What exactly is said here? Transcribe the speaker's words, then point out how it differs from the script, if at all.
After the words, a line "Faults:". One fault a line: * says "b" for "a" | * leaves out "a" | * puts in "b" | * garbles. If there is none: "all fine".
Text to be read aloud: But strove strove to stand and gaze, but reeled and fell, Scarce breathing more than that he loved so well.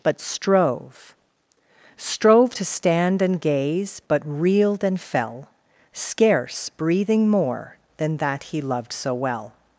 But strove strove to stand and gaze, but reeled and fell, Scarce breathing more than that he loved so well.
Faults:
all fine